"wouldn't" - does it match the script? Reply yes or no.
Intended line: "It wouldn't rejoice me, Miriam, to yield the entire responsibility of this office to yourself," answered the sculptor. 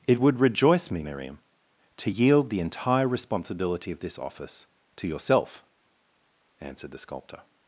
no